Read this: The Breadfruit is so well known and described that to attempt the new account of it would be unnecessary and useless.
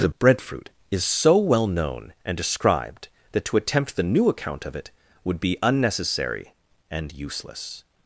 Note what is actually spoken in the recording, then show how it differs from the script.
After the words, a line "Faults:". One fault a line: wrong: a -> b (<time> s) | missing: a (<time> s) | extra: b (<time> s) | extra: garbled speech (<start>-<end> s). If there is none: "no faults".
The Breadfruit is so well known and described that to attempt the new account of it would be unnecessary and useless.
Faults:
no faults